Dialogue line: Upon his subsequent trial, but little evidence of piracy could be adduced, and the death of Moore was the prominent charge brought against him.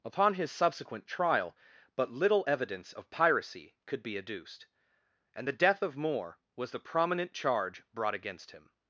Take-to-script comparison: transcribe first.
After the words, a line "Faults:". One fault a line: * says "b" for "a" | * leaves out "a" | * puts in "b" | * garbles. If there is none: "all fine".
Upon his subsequent trial, but little evidence of piracy could be adduced, and the death of Moore was the prominent charge brought against him.
Faults:
all fine